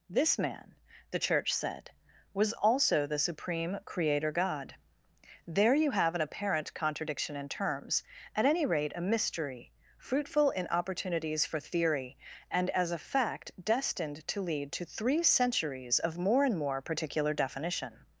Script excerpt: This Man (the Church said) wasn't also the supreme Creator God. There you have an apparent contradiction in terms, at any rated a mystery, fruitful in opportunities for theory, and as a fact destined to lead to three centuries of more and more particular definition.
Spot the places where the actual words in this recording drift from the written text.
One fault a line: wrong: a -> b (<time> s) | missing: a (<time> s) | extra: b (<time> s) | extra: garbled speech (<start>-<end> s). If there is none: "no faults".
wrong: wasn't -> was (2.3 s)
wrong: rated -> rate (8.7 s)